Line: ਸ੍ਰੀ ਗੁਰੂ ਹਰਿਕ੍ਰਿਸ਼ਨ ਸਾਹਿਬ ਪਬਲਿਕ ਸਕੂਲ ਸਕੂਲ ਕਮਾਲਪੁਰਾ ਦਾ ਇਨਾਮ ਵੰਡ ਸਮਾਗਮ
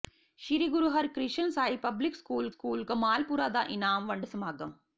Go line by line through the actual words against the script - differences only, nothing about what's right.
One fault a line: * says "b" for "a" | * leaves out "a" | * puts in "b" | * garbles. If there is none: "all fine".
all fine